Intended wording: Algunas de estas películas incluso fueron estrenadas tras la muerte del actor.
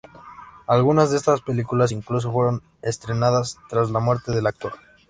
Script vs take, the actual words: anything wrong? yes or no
no